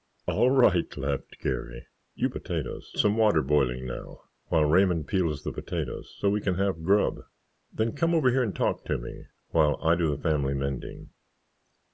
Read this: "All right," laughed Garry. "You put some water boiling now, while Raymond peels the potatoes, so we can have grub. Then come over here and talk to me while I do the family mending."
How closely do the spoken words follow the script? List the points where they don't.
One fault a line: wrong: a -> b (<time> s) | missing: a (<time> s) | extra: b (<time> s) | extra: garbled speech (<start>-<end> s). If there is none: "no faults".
wrong: put -> potatoes (2.3 s)